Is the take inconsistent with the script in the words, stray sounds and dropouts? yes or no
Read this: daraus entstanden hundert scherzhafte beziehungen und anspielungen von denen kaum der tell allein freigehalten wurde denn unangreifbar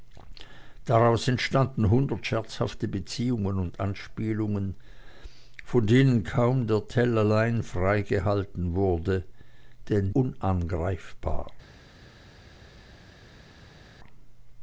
no